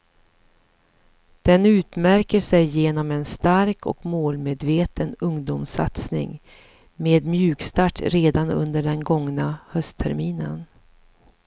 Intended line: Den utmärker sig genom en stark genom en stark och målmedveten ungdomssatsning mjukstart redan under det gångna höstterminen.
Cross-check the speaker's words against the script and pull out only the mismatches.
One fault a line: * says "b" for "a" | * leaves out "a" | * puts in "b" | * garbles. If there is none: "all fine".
* leaves out "genom en stark"
* puts in "med"
* says "den" for "det"